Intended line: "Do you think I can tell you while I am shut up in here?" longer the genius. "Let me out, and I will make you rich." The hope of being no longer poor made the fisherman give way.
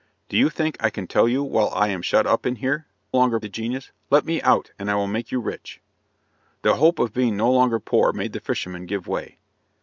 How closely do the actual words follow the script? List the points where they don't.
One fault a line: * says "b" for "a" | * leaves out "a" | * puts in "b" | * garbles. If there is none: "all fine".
all fine